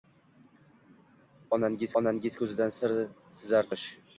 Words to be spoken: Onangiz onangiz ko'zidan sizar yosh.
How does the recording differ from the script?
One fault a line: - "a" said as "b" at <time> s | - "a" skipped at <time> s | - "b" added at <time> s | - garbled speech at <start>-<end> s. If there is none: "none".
none